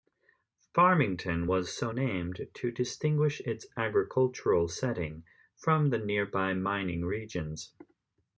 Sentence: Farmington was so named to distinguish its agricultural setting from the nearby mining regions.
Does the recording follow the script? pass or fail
pass